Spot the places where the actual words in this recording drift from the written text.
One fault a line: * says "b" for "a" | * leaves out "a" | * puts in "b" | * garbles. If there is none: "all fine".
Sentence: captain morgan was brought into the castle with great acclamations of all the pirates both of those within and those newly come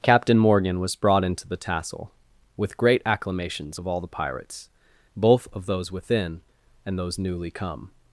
* says "tassel" for "castle"